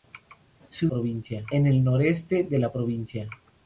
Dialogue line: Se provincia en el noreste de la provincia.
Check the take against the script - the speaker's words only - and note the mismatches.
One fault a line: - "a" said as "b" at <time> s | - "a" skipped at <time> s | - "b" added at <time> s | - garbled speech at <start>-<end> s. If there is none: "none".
none